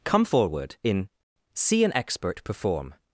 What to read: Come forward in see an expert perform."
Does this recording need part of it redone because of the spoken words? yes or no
no